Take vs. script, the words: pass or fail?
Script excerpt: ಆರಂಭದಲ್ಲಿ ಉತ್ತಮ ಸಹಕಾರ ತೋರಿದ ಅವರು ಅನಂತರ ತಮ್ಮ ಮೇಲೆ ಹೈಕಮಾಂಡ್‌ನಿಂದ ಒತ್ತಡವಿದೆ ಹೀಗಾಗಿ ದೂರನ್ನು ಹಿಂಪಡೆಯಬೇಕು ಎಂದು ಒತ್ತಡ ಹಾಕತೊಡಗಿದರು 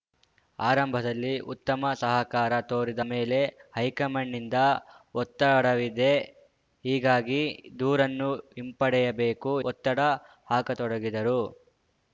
fail